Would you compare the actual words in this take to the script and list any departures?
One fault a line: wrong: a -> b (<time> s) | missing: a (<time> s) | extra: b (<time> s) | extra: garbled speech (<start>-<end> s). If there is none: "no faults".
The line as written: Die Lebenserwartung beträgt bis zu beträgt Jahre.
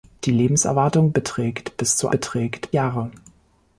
no faults